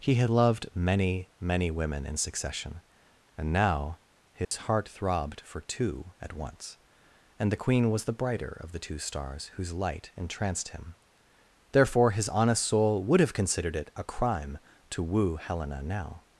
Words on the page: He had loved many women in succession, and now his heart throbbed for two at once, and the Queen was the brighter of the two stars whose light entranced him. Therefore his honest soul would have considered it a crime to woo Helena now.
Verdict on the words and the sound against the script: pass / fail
fail